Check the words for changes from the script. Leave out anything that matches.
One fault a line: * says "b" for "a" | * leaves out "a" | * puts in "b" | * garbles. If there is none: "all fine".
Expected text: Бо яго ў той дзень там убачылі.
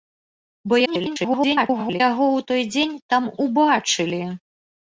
* garbles